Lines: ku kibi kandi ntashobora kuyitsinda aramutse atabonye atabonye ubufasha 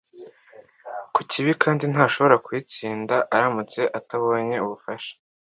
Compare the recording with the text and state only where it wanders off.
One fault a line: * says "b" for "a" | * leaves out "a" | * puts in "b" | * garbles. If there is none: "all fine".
* leaves out "atabonye"